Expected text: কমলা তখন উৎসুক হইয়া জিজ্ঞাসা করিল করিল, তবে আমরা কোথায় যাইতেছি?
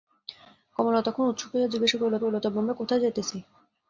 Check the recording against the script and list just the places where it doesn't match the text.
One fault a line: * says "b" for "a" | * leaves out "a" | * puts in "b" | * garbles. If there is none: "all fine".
all fine